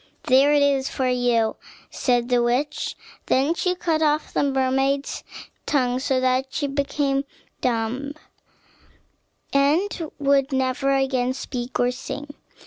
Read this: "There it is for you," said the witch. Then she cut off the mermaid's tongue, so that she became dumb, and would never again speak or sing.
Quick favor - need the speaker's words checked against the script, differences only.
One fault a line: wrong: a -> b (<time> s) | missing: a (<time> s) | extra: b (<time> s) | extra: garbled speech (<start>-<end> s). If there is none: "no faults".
no faults